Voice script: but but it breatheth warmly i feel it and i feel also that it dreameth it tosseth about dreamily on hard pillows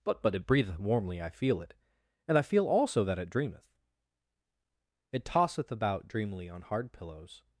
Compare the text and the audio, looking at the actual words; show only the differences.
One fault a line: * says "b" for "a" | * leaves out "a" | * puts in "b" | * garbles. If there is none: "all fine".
all fine